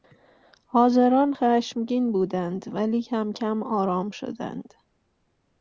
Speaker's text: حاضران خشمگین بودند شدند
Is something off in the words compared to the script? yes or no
yes